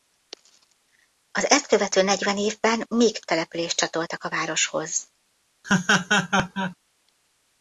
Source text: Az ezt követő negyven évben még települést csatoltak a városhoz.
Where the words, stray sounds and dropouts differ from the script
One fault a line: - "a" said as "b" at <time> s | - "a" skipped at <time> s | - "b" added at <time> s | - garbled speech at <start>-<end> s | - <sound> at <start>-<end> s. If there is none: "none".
- laugh at 5.6-6.8 s